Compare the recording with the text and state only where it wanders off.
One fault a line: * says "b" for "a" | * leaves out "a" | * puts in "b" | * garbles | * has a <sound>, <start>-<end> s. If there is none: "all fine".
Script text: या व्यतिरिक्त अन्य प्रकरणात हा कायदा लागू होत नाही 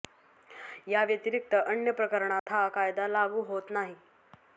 * has a dropout, 2.4-2.5 s